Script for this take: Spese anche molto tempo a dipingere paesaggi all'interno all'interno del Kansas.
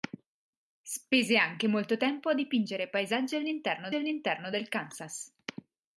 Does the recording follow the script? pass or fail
pass